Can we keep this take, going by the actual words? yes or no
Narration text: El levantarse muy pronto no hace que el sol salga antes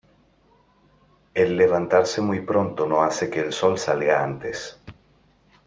yes